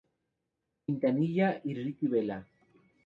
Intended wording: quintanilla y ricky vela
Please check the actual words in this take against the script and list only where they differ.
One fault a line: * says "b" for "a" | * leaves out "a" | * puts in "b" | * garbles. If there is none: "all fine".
all fine